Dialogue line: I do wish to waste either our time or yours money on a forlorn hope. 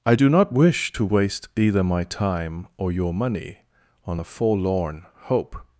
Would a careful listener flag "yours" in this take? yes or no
yes